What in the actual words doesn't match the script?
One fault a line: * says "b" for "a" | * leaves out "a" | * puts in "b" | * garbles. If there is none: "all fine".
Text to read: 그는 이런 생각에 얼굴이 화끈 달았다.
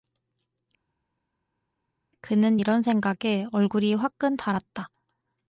all fine